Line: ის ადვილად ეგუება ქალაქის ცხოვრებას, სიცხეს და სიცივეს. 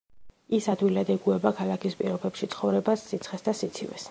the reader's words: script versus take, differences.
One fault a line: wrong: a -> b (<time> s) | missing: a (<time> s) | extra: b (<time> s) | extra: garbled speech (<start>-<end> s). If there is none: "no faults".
extra: პირობებში (2.0 s)